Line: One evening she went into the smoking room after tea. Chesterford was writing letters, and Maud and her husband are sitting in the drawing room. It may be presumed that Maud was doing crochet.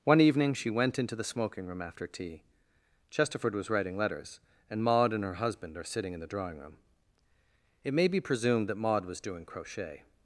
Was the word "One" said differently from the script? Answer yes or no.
no